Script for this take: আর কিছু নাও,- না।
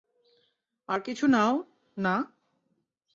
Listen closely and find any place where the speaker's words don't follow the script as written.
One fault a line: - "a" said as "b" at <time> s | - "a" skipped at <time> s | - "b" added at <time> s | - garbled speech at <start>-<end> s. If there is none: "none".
none